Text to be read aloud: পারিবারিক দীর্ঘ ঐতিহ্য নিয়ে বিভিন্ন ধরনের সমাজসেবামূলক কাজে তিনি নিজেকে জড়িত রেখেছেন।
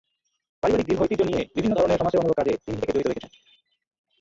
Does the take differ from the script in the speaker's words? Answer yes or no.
no